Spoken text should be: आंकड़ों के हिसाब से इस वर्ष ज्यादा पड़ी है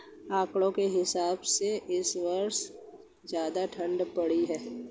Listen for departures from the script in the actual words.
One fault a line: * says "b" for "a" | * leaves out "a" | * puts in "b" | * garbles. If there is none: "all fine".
* puts in "ठण्ड"